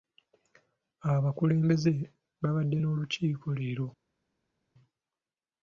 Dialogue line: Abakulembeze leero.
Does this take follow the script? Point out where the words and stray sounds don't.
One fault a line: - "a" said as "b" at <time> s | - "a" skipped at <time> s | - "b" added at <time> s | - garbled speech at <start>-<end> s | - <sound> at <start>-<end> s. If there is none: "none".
- "babadde n'olukiiko" added at 2.4 s